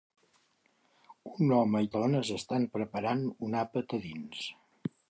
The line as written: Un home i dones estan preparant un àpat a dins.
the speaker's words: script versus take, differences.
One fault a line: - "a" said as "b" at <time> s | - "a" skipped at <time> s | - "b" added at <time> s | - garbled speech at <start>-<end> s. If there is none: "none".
none